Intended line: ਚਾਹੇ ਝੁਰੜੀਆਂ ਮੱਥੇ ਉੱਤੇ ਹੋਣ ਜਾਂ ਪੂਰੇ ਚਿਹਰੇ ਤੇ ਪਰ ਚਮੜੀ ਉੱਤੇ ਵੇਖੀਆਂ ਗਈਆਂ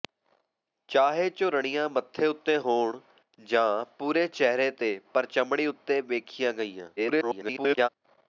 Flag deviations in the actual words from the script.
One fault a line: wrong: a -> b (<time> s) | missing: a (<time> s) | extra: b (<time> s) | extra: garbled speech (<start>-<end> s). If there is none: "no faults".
extra: garbled speech (7.0-7.9 s)